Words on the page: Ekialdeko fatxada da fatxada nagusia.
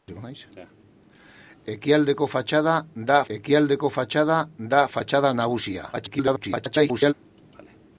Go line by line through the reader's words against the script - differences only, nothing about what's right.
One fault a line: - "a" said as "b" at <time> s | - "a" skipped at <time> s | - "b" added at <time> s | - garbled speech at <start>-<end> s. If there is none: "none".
- "ekialdeko fatxada da" added at 3.4 s
- garbled speech at 5.9-7.1 s